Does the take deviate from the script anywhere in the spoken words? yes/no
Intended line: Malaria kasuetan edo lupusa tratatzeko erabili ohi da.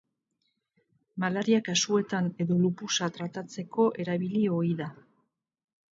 no